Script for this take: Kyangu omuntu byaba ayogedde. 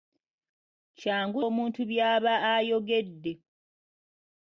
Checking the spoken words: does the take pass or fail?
pass